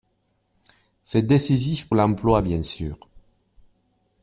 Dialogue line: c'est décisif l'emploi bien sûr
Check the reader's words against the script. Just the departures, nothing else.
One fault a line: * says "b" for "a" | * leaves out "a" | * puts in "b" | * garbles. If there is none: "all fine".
all fine